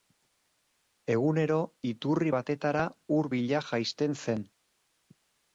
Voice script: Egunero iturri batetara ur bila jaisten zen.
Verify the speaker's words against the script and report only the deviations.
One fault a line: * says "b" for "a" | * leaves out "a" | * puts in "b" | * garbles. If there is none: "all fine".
all fine